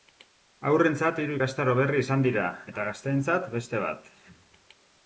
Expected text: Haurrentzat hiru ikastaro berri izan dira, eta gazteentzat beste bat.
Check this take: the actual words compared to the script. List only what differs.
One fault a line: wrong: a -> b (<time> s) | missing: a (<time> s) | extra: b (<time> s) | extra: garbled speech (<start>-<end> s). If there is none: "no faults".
no faults